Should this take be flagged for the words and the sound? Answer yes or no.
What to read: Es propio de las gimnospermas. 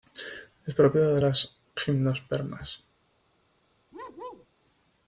yes